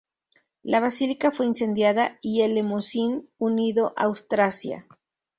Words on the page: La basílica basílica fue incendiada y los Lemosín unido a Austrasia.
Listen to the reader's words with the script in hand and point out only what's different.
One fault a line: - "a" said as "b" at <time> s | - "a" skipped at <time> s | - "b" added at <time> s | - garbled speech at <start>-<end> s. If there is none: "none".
- "basílica" skipped at 1.3 s
- "los" said as "el" at 2.4 s